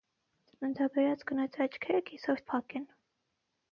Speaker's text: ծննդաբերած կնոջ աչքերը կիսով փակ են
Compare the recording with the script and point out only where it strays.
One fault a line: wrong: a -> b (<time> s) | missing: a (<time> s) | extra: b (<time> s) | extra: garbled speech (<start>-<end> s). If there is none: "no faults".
no faults